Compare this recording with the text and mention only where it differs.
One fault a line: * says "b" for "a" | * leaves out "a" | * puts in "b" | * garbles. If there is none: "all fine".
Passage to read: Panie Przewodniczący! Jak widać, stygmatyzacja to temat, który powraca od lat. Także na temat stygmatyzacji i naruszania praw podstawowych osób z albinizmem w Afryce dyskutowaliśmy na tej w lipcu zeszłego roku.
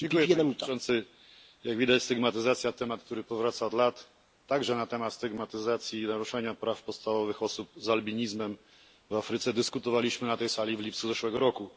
* puts in "sali"